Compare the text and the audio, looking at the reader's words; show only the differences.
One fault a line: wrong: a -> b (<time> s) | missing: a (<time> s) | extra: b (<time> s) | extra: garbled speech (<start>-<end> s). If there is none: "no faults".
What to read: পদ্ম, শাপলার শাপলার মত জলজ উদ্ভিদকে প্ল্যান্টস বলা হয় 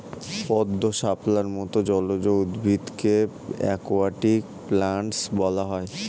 missing: শাপলার (1.5 s)
extra: অ্যাকোয়াটিক (3.6 s)